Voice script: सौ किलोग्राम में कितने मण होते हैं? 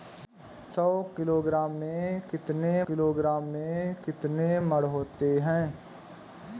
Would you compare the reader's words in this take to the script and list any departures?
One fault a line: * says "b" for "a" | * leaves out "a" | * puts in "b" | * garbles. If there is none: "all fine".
* puts in "किलोग्राम में कितने"